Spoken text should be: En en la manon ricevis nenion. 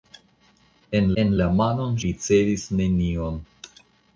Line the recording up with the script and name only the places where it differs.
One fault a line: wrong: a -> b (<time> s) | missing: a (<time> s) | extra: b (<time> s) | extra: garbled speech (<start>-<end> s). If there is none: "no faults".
no faults